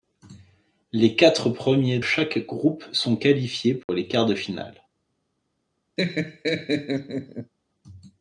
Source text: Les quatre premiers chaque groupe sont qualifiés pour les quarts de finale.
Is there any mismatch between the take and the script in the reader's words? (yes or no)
no